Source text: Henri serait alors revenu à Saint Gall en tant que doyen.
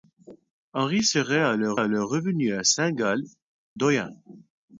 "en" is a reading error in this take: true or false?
true